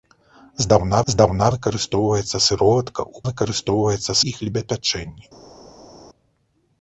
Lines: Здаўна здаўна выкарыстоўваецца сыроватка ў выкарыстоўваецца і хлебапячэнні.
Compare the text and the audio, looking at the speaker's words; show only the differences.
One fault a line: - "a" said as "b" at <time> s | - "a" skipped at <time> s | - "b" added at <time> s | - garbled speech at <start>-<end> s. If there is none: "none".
none